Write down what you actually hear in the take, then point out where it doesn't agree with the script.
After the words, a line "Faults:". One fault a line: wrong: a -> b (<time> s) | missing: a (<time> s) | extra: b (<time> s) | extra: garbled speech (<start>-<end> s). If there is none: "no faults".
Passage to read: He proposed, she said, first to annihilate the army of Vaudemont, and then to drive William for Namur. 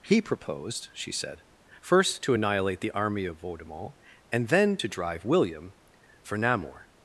He proposed, she said, first to annihilate the army of Vaudemont, and then to drive William for Namur.
Faults:
no faults